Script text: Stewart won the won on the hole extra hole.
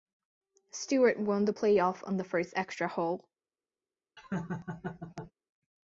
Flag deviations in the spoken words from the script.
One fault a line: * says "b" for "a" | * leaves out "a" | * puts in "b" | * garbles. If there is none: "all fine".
* says "playoff" for "won"
* says "first" for "hole"